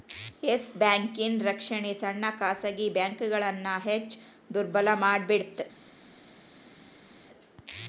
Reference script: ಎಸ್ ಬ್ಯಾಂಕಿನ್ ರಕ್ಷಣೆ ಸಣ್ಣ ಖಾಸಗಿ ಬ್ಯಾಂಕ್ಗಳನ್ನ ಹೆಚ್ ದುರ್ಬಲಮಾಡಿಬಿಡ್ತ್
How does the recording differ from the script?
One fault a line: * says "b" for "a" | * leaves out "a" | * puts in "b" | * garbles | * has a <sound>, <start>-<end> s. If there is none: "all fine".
all fine